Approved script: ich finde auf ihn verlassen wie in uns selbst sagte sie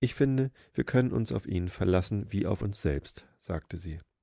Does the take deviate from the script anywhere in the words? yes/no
yes